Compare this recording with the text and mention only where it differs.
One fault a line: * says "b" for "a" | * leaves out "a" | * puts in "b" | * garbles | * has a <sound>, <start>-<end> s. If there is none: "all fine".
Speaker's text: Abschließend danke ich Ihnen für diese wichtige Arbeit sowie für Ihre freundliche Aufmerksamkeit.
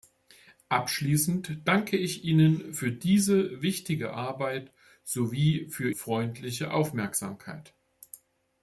* leaves out "Ihre"